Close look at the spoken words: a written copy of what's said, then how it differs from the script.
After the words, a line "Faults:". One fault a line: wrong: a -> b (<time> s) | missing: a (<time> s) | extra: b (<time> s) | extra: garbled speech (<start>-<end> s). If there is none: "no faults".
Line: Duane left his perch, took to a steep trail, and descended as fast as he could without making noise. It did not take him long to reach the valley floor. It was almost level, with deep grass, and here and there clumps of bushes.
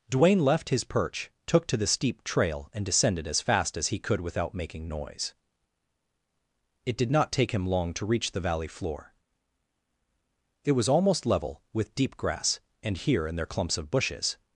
Duane left his perch, took to the steep trail, and descended as fast as he could without making noise. It did not take him long to reach the valley floor. It was almost level, with deep grass, and here and there clumps of bushes.
Faults:
wrong: a -> the (1.8 s)